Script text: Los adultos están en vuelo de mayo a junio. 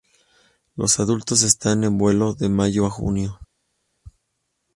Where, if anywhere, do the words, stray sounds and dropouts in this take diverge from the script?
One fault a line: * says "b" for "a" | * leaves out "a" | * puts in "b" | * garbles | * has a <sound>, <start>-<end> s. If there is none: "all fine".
all fine